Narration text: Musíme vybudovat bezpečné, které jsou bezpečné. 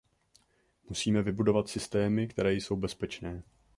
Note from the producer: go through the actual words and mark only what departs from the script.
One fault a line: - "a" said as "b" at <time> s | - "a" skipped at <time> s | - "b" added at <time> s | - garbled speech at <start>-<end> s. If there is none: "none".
- "bezpečné" said as "systémy" at 1.7 s